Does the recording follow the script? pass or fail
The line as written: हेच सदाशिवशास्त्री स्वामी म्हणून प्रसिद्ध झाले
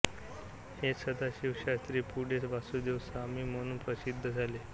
fail